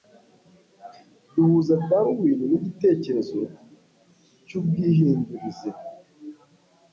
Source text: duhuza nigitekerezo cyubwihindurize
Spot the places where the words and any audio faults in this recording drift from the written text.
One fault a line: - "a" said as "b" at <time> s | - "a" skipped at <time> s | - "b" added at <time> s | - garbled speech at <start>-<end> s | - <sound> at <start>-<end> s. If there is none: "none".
- "darwin" added at 1.9 s